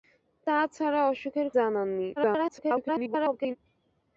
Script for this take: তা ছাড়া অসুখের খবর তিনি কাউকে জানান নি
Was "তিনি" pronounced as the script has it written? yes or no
no